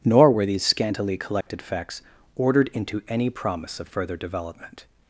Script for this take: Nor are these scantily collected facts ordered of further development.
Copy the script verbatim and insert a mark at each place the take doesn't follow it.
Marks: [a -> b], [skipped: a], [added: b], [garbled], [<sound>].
Nor [are -> were] these scantily collected [dropout] facts ordered [added: into any promise] of further development.